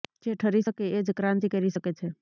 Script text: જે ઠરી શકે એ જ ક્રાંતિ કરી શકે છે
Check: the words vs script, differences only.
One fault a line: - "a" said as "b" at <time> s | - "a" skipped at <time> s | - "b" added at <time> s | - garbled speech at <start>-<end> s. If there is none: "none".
none